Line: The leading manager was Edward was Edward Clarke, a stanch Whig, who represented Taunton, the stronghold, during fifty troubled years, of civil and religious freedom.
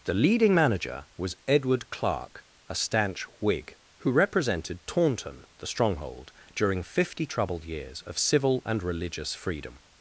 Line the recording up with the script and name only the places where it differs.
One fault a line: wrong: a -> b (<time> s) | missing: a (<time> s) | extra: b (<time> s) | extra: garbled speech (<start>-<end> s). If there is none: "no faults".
missing: was Edward (1.9 s)